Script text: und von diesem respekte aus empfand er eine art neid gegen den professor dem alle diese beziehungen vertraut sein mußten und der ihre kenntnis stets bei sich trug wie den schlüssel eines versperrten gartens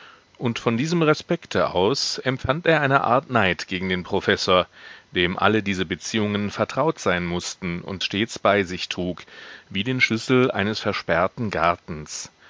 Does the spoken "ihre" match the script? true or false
false